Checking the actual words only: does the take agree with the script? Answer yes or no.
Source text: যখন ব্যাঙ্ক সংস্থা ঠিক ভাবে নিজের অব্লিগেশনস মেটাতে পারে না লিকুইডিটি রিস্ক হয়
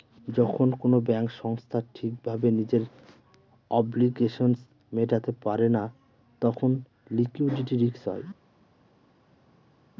no